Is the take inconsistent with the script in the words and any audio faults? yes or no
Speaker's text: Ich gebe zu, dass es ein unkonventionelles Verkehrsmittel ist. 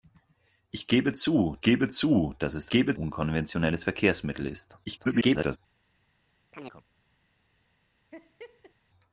yes